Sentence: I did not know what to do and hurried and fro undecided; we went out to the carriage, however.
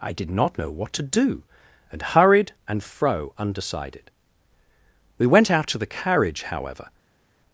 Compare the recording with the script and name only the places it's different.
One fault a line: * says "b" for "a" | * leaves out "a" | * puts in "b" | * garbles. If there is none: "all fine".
all fine